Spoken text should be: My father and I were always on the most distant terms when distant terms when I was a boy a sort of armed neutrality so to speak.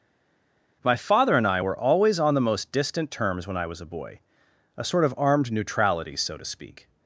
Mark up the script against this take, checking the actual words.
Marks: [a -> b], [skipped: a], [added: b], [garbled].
My father and I were always on the most distant terms when [skipped: distant terms when] I was a boy a sort of armed neutrality so to speak.